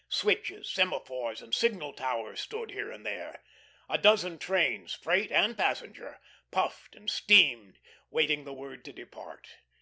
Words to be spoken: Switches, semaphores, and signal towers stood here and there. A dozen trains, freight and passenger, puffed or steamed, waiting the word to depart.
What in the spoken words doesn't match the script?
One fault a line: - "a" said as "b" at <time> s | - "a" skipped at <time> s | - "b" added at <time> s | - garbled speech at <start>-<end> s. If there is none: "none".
- "or" said as "and" at 7.0 s